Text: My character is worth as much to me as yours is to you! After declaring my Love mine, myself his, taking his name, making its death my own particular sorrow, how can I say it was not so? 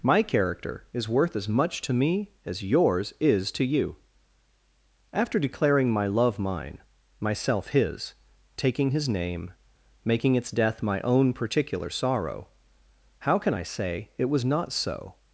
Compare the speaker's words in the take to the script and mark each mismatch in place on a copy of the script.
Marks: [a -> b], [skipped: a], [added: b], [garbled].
My character is worth as much to me as yours is to you! After declaring my Love mine, myself his, taking his name, making its death my own particular sorrow, how can I say it was not so?